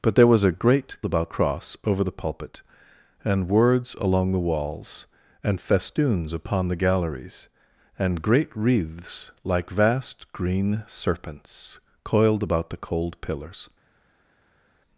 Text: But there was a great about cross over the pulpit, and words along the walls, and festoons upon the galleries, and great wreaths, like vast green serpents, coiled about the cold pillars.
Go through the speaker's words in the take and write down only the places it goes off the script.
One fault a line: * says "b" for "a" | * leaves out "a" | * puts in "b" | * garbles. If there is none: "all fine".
all fine